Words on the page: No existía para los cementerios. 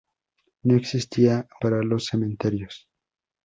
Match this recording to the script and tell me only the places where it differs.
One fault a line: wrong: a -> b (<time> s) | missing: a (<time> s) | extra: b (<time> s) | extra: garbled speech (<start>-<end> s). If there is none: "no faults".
no faults